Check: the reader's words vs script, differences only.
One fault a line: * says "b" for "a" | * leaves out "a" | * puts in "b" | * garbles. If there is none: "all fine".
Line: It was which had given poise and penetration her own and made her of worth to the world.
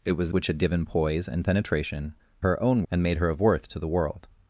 all fine